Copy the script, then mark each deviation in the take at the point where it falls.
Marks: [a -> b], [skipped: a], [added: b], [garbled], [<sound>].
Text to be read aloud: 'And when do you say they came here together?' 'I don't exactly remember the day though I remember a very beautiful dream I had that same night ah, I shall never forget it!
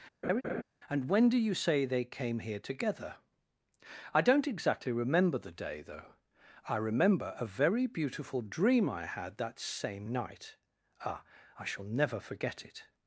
[laugh] 'And when do you say they came here together?' 'I don't exactly remember the day though I remember a very beautiful dream I had that same night ah, I shall never forget it!